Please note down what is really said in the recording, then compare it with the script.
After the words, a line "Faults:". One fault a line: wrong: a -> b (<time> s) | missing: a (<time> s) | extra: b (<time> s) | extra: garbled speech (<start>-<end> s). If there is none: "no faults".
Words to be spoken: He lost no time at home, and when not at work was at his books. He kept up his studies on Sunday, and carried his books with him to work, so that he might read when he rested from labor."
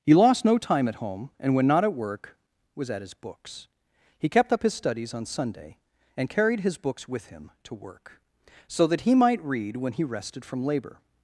He lost no time at home, and when not at work was at his books. He kept up his studies on Sunday, and carried his books with him to work, so that he might read when he rested from labor."
Faults:
no faults